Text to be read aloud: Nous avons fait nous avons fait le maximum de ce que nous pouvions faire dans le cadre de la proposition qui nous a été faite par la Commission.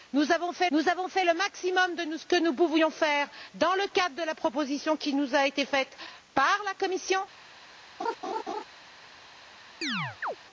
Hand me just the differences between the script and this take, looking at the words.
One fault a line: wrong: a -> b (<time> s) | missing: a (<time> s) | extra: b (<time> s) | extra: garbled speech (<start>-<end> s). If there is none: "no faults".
no faults